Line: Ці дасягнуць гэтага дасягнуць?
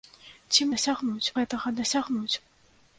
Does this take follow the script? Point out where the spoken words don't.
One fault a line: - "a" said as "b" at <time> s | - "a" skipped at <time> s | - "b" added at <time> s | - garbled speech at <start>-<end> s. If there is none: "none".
none